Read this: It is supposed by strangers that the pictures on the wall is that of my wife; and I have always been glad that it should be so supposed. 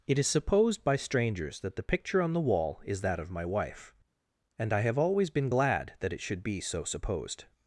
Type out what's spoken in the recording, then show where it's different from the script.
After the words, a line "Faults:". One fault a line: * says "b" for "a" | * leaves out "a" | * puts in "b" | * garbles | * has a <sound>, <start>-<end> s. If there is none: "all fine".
It is supposed by strangers that the picture on the wall is that of my wife; and I have always been glad that it should be so supposed.
Faults:
* says "picture" for "pictures"